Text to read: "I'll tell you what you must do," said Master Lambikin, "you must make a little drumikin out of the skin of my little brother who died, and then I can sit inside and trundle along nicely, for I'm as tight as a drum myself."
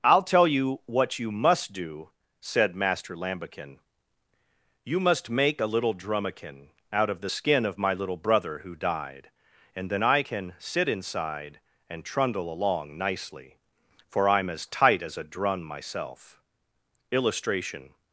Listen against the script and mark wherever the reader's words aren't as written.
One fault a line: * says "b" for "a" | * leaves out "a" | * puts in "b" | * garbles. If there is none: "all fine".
* puts in "Illustration"